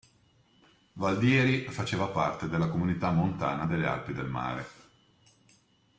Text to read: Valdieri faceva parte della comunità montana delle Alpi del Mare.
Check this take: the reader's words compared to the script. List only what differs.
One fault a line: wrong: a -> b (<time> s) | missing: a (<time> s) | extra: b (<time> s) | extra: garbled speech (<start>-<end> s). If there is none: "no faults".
no faults